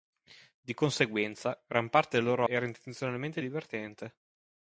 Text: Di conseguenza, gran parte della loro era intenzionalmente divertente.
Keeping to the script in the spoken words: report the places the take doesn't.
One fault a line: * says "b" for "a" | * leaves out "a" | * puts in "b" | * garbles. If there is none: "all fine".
all fine